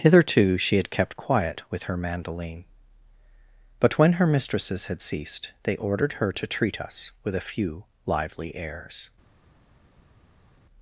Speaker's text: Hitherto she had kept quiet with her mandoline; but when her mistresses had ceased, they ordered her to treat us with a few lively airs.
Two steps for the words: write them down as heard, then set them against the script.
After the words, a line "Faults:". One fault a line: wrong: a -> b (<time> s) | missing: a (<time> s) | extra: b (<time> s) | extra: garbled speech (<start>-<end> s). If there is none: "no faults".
Hitherto she had kept quiet with her mandoline; but when her mistresses had ceased, they ordered her to treat us with a few lively airs.
Faults:
no faults